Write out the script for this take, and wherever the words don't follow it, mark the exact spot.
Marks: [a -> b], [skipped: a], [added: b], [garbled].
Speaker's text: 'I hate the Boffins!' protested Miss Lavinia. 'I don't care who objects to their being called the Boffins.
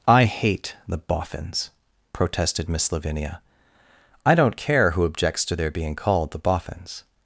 'I hate the Boffins!' protested Miss Lavinia. 'I don't care who objects to their being called the Boffins.